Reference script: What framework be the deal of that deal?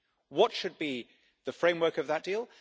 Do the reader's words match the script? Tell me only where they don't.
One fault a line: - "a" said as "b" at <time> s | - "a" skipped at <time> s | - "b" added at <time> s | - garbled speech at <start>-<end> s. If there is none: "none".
- "framework" said as "should" at 0.5 s
- "deal" said as "framework" at 1.5 s